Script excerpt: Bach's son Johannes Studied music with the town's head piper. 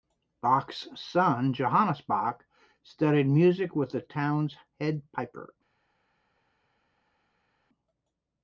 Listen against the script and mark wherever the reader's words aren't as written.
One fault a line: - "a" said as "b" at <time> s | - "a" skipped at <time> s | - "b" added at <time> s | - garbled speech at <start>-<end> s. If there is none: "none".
- "Bach" added at 2.0 s